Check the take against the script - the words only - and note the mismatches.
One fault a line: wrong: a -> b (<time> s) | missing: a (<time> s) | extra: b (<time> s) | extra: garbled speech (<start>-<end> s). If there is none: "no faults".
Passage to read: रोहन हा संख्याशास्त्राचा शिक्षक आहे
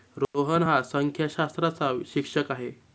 no faults